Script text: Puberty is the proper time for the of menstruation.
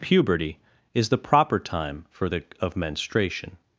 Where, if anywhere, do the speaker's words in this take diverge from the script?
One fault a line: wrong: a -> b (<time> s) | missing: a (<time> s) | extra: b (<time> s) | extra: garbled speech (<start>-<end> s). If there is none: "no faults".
no faults